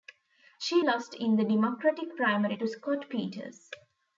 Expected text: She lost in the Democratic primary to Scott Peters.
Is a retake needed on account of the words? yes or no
no